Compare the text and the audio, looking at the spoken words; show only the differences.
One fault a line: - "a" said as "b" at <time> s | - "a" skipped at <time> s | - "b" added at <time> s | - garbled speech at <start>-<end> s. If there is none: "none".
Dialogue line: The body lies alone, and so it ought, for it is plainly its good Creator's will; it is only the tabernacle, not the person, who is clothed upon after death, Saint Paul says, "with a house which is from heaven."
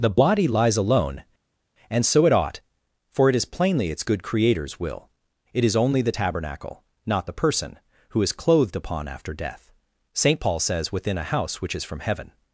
- "with" said as "within" at 10.9 s